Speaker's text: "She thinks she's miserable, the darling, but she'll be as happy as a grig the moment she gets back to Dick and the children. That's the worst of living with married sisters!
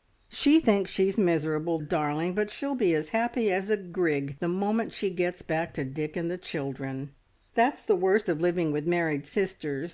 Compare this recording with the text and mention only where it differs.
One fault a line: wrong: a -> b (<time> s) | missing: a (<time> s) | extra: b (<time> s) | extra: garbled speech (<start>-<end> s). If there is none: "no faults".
missing: the (1.8 s)